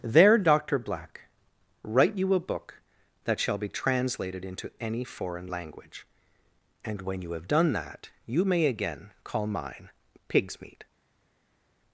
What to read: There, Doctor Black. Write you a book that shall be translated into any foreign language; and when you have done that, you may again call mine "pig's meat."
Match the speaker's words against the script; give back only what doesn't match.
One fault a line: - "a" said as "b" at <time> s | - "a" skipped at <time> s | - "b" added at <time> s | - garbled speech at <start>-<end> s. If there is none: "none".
none